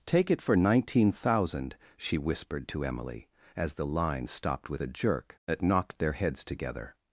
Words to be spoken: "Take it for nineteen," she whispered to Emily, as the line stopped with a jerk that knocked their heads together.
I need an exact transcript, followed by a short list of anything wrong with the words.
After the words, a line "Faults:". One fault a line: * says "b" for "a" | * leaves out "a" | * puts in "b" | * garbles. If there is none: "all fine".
"Take it for nineteen," thousand she whispered to Emily, as the line stopped with a jerk that knocked their heads together.
Faults:
* puts in "thousand"